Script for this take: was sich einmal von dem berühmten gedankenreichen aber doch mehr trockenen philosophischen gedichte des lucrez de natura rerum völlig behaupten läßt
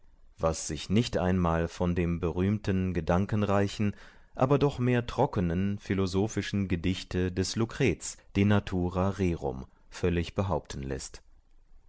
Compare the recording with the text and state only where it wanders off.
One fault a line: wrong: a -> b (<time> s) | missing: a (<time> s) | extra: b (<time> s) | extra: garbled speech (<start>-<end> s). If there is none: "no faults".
extra: nicht (0.9 s)